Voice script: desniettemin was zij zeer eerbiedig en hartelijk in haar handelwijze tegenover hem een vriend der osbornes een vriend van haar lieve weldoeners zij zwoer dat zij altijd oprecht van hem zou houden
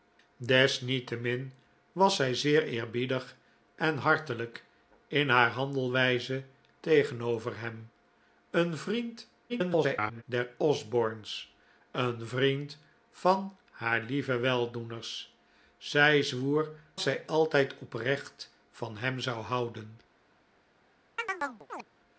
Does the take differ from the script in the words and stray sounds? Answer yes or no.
yes